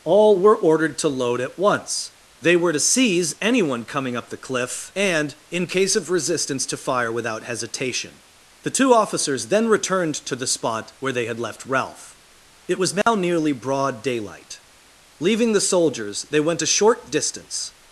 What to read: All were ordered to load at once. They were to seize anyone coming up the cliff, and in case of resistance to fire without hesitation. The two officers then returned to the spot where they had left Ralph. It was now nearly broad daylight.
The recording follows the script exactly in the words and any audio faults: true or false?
false